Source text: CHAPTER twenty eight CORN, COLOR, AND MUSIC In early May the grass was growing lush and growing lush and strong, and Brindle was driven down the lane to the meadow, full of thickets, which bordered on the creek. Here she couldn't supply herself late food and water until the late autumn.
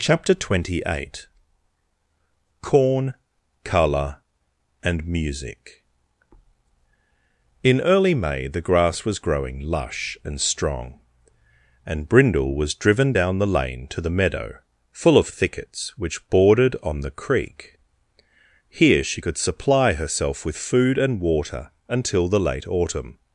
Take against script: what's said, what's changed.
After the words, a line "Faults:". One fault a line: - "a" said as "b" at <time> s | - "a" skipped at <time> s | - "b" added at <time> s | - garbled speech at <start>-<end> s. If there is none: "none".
CHAPTER twenty eight CORN, COLOR, AND MUSIC In early May the grass was growing lush and strong, and Brindle was driven down the lane to the meadow, full of thickets, which bordered on the creek. Here she could supply herself with food and water until the late autumn.
Faults:
- "growing lush and" skipped at 10.4 s
- "couldn't" said as "could" at 19.2 s
- "late" said as "with" at 20.4 s